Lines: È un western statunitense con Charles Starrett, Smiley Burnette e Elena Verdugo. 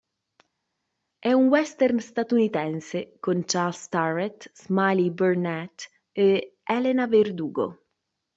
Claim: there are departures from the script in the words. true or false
false